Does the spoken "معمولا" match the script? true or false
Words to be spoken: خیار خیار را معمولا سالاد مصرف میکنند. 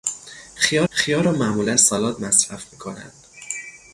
true